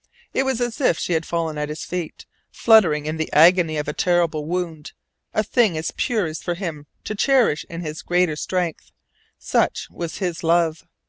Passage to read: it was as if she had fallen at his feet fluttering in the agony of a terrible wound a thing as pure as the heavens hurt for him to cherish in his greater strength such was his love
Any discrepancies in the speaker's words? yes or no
yes